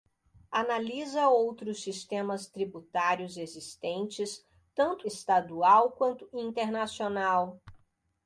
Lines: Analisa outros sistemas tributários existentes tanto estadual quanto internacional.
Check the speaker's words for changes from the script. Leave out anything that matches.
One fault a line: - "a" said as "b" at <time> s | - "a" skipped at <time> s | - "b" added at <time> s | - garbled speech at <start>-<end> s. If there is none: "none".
none